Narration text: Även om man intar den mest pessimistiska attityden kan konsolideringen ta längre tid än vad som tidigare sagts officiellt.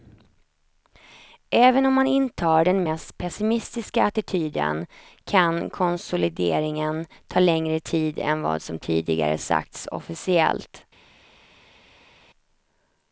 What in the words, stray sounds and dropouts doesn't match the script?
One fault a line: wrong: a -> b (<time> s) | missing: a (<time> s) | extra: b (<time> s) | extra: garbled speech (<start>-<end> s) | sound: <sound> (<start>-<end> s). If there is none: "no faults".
no faults